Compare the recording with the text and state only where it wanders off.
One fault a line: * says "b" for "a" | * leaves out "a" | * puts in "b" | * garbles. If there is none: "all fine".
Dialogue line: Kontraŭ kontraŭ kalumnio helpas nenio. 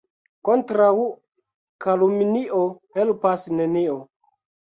* leaves out "kontraŭ"